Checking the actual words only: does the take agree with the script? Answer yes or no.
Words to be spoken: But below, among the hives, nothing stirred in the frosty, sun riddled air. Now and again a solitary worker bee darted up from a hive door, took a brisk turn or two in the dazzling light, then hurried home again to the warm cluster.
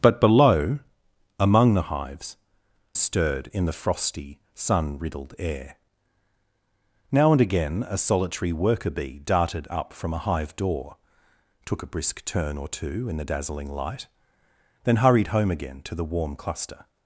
no